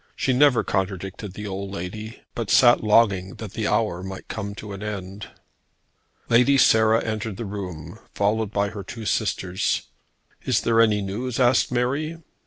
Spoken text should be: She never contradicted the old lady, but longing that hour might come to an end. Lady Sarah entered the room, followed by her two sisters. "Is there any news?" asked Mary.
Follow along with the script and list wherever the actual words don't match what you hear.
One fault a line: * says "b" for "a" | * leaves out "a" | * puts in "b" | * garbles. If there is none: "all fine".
* puts in "sat"
* puts in "the"